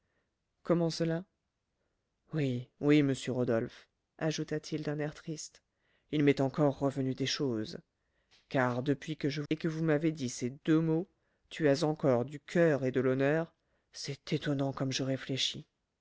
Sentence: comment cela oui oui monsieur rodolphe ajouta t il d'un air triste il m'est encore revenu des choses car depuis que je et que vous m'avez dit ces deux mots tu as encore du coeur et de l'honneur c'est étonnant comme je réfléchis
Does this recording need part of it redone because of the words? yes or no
no